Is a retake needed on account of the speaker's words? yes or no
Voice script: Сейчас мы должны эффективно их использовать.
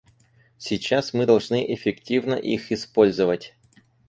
no